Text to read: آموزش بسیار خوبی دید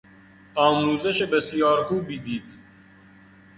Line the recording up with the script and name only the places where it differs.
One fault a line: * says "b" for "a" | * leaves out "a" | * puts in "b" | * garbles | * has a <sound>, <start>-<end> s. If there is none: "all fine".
all fine